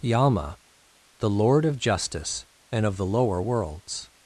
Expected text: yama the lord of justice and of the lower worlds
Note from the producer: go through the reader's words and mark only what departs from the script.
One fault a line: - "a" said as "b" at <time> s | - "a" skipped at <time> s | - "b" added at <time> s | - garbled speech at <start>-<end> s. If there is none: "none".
none